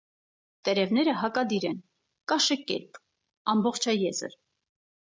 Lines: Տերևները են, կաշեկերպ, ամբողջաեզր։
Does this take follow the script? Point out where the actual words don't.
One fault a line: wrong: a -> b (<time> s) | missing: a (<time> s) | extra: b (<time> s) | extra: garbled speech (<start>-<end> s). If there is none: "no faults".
extra: հակադիր (1.2 s)